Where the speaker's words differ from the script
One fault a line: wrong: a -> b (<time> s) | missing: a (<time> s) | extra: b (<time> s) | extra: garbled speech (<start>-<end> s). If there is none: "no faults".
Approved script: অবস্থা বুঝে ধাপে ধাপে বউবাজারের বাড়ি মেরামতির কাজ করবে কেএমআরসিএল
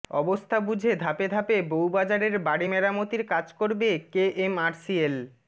no faults